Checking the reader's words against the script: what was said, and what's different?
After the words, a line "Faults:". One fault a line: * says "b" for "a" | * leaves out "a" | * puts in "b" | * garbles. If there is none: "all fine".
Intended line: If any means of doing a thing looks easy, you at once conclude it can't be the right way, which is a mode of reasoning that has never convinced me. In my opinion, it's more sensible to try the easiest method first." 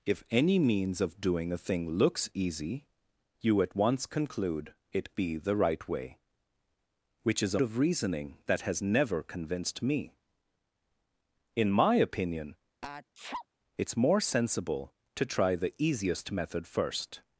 If any means of doing a thing looks easy, you at once conclude it be the right way, which is a of reasoning that has never convinced me. In my opinion, it's more sensible to try the easiest method first."
Faults:
* leaves out "can't"
* leaves out "mode"